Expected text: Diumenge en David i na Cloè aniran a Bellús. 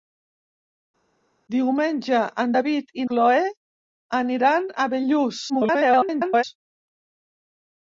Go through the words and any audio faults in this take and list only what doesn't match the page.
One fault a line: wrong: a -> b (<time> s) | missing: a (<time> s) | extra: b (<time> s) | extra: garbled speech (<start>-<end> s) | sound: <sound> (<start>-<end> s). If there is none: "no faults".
missing: na (3.1 s)
extra: garbled speech (5.5-6.4 s)